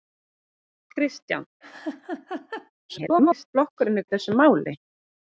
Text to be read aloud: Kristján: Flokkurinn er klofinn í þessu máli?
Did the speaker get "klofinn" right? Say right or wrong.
wrong